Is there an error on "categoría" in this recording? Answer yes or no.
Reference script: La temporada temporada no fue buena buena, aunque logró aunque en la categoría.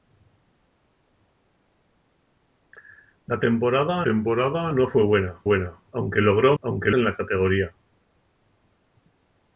no